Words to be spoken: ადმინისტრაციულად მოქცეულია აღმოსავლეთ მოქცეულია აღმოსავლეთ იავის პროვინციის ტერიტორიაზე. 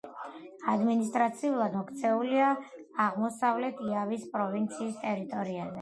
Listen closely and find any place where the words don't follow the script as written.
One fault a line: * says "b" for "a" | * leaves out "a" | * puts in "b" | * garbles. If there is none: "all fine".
* leaves out "მოქცეულია აღმოსავლეთ"